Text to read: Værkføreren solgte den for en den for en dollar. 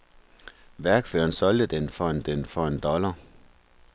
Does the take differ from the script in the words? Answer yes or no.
no